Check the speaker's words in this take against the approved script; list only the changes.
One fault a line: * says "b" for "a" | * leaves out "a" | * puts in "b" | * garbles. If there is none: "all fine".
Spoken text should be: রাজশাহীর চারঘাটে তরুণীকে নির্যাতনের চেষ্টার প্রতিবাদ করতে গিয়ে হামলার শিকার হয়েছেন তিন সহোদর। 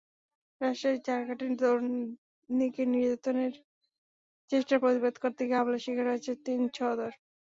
all fine